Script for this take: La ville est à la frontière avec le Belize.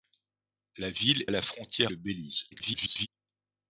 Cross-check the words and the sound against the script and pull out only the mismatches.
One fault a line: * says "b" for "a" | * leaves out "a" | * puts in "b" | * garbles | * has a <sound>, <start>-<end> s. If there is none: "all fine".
* leaves out "est"
* leaves out "avec"
* garbles